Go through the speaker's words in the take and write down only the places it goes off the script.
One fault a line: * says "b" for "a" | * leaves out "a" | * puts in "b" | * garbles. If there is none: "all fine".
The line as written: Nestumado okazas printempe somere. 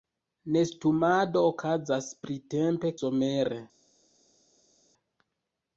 all fine